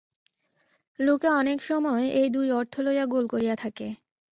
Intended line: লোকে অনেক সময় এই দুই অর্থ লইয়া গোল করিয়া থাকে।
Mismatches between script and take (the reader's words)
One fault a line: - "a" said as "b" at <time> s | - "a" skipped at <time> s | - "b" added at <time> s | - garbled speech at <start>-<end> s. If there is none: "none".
none